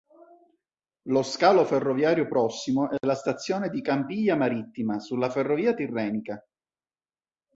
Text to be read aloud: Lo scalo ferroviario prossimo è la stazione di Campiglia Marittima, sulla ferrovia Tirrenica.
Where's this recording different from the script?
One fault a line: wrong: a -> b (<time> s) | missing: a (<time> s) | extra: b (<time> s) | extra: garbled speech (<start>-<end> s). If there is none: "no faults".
no faults